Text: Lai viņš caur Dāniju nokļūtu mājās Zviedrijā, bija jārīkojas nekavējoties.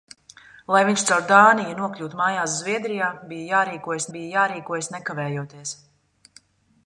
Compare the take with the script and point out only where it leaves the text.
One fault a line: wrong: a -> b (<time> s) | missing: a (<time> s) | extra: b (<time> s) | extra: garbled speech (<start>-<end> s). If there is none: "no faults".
extra: bija jārīkojas (4.2 s)